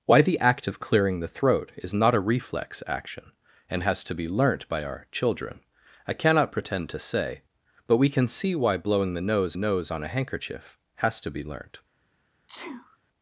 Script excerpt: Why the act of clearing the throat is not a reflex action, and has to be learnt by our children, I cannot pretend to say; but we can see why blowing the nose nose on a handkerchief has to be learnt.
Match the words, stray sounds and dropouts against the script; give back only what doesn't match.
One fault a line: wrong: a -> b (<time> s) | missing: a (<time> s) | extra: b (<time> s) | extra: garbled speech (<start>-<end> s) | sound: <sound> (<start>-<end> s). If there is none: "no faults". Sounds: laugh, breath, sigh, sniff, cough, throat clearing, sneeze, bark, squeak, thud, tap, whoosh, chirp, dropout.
sound: sneeze (12.5-13.0 s)